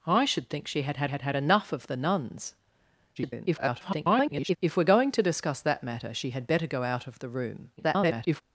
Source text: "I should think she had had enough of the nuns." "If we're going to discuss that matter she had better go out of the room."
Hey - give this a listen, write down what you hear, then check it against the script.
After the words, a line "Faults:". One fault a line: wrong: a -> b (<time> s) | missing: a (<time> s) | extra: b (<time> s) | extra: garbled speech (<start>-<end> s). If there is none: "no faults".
"I should think she had had had had enough of the nuns." [garbled] "If we're going to discuss that matter she had better go out of the room." [garbled]
Faults:
extra: had had (1.1 s)
extra: garbled speech (3.2-4.6 s)
extra: garbled speech (7.8-8.4 s)